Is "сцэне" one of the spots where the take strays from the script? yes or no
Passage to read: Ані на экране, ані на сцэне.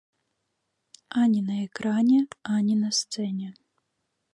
no